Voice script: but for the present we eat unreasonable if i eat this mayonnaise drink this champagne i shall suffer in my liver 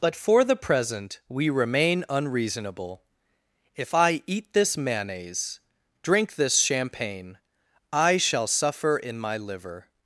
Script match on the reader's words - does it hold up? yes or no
no